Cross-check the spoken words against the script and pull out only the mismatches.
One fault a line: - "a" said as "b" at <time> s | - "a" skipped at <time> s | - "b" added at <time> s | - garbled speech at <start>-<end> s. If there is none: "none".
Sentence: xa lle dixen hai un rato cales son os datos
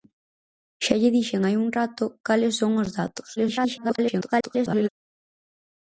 - garbled speech at 3.4-4.9 s